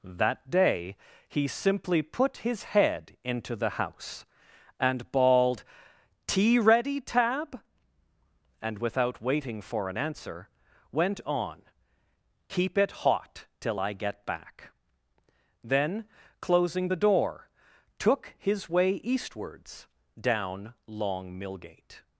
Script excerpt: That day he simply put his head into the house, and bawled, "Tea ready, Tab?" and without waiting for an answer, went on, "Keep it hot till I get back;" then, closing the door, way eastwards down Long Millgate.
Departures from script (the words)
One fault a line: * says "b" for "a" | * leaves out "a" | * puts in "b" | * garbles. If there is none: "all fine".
* puts in "took his"